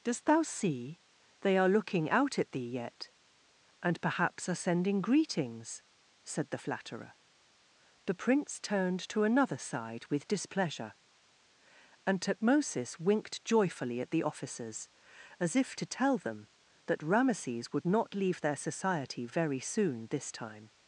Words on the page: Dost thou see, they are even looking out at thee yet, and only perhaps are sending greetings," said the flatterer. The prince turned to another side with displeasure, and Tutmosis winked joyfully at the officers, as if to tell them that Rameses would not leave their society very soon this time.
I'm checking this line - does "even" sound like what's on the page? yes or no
no